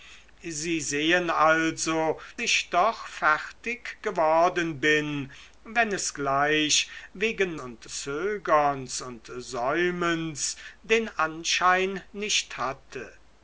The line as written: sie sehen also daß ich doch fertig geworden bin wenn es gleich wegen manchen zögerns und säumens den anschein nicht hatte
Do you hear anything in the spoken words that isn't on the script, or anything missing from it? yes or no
yes